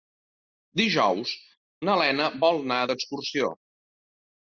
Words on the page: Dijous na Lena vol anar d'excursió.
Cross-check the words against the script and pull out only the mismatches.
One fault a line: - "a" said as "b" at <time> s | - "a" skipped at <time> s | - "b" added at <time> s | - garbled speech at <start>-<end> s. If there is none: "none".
none